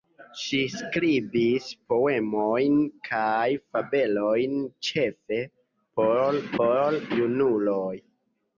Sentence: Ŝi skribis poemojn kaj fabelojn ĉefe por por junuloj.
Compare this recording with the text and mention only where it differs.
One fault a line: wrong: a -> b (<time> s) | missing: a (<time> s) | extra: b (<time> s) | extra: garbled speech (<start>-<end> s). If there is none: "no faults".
no faults